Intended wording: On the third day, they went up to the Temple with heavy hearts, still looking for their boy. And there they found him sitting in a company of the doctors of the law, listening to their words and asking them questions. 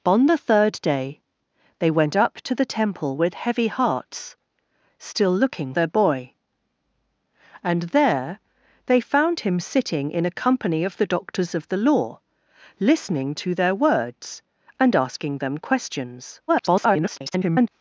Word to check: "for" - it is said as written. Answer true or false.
false